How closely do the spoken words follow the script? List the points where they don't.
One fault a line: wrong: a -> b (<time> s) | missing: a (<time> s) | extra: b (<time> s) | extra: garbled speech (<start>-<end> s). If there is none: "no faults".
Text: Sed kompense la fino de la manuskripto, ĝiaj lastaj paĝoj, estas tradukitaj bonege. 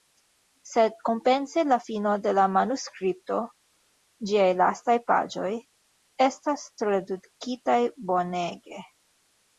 no faults